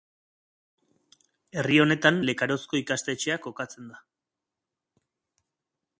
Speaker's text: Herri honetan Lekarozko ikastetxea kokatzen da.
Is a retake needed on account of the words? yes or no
no